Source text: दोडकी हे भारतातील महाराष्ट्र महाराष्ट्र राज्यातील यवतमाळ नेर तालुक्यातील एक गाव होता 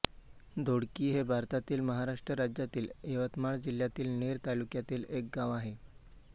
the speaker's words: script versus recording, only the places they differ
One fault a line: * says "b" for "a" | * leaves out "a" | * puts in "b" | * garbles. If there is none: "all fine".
* leaves out "महाराष्ट्र"
* puts in "जिल्ह्यातील"
* says "आहे" for "होता"